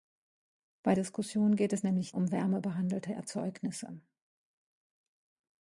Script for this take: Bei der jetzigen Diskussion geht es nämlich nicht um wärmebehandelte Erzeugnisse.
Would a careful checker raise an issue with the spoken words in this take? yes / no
yes